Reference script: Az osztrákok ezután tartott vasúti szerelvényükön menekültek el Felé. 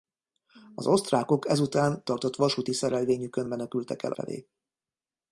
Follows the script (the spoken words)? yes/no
yes